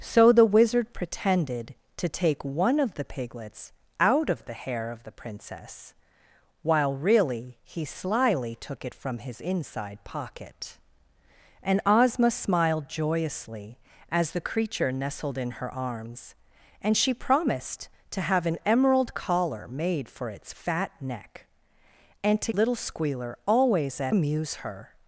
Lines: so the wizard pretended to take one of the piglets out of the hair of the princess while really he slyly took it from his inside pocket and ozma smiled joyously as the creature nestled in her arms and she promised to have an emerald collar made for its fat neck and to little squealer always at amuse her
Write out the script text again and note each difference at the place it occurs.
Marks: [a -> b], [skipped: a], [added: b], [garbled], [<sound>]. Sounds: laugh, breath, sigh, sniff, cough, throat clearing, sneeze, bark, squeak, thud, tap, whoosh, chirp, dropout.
so the wizard pretended to take one of the piglets out of the hair of the princess while really he slyly took it from his inside pocket and ozma smiled joyously as the creature nestled in her arms and she promised to have an emerald collar made for its fat neck and to little squealer always at amuse her